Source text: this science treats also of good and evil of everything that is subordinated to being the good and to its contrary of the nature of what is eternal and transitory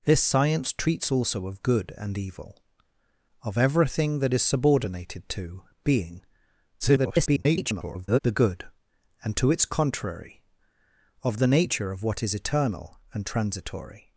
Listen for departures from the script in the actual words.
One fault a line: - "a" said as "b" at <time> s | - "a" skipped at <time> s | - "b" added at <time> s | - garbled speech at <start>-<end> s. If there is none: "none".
- garbled speech at 6.8-8.2 s